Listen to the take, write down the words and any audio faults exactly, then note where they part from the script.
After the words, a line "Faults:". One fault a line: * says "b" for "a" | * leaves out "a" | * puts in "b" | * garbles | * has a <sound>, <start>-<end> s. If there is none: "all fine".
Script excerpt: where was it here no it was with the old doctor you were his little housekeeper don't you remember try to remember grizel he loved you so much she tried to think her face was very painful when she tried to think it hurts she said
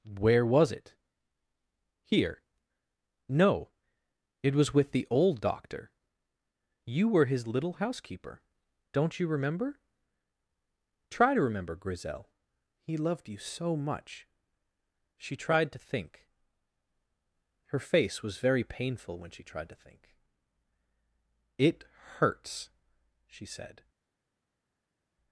where was it here no it was with the old doctor you were his little housekeeper don't you remember try to remember grizel he loved you so much she tried to think her face was very painful when she tried to think it hurts she said
Faults:
all fine